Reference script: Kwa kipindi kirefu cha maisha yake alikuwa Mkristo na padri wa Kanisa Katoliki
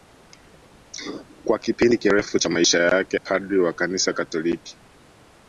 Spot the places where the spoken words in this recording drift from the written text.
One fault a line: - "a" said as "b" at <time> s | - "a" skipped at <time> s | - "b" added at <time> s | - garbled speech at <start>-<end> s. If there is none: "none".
- "alikuwa Mkristo na" skipped at 3.2 s